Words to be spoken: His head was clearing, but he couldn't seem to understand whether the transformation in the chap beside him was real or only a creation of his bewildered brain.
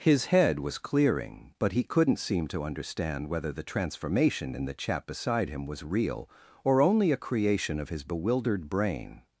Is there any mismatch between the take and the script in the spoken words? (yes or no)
no